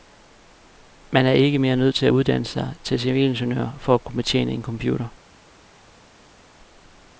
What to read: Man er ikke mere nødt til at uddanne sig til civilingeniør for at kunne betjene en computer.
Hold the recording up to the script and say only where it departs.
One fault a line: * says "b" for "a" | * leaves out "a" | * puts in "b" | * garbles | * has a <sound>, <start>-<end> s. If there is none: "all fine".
all fine